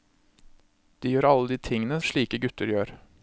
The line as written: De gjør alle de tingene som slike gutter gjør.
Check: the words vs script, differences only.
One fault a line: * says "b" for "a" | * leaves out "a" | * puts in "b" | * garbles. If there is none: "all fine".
* leaves out "som"